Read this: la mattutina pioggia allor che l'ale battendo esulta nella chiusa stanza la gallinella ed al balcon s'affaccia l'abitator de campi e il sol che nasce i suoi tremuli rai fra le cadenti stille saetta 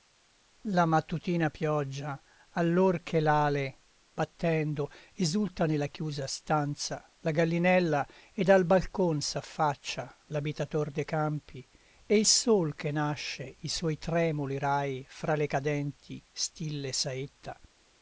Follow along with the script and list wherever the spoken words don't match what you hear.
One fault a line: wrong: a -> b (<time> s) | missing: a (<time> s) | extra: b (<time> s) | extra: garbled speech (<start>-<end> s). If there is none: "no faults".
no faults